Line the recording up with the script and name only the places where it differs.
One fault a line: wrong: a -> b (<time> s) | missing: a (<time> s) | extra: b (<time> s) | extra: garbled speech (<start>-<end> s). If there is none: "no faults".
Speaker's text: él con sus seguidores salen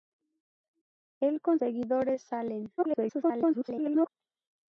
missing: sus (1.6 s)
extra: garbled speech (2.8-4.1 s)